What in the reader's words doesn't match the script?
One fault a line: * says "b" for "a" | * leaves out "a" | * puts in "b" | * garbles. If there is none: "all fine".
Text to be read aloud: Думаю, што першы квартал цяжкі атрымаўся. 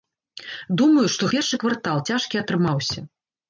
all fine